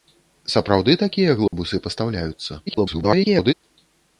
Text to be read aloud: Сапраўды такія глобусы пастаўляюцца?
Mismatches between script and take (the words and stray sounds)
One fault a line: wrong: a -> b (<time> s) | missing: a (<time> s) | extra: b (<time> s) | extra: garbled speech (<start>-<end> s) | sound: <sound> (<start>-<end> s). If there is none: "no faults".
sound: dropout (1.5-1.5 s)
extra: garbled speech (2.7-3.5 s)